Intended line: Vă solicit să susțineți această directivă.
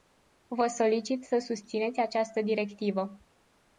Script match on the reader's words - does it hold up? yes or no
yes